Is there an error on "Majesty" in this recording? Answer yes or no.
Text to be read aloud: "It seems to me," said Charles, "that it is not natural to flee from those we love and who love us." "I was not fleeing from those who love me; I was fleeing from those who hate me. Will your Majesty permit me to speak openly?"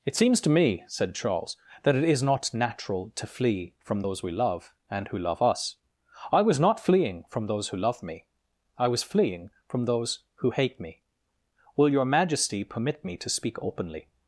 no